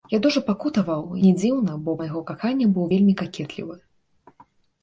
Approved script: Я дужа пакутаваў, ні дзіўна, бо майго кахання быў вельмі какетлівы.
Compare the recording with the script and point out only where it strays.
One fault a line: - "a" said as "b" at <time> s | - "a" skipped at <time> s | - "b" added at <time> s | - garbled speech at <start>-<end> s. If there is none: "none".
none